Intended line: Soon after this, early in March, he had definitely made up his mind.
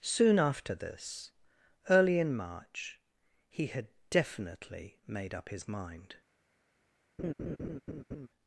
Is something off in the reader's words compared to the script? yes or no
no